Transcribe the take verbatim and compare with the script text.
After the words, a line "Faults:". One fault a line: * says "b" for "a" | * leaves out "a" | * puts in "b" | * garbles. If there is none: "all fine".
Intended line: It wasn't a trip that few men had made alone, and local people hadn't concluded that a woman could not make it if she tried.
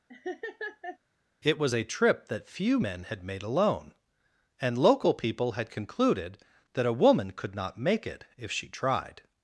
It was a trip that few men had made alone, and local people had concluded that a woman could not make it if she tried.
Faults:
* says "was" for "wasn't"
* says "had" for "hadn't"